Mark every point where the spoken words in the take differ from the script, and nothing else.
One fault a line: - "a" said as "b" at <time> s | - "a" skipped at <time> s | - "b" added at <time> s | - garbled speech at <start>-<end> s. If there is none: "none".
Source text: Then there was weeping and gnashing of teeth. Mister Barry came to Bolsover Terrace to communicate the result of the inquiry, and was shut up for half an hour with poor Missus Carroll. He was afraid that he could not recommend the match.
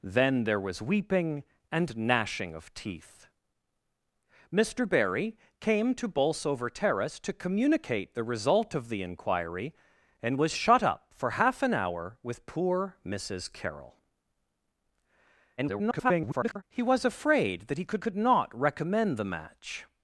- garbled speech at 15.6-16.6 s
- "could" added at 18.0 s